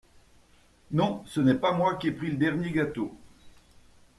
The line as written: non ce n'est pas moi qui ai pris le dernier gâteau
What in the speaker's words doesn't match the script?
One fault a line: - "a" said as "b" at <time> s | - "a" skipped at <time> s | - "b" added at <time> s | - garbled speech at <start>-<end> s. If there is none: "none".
none